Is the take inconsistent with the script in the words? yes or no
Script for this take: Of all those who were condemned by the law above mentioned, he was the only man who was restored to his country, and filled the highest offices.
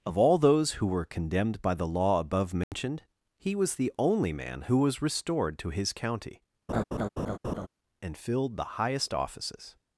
yes